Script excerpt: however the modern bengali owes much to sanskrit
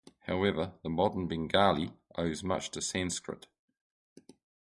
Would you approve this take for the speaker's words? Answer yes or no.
yes